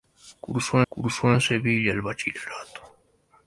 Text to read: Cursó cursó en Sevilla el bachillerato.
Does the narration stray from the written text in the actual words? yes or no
no